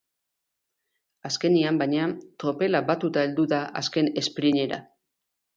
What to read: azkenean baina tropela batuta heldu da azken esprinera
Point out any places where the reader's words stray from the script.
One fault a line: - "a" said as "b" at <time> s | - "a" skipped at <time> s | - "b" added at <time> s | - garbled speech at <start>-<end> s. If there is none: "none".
none